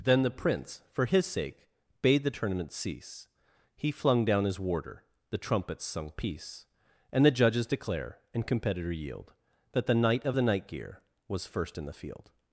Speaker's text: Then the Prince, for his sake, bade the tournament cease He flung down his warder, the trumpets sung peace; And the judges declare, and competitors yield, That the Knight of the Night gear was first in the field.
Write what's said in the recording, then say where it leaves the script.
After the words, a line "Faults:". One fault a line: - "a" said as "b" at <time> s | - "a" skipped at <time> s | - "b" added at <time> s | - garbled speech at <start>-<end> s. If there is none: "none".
Then the Prince, for his sake, bade the tournament cease He flung down his warder, the trumpets sung peace; And the judges declare, and competitor yield, That the Knight of the Night gear was first in the field.
Faults:
- "competitors" said as "competitor" at 8.5 s